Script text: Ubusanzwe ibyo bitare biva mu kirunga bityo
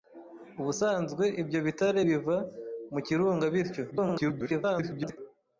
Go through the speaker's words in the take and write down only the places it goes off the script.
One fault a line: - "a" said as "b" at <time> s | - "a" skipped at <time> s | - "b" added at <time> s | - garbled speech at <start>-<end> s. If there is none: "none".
- garbled speech at 3.9-5.2 s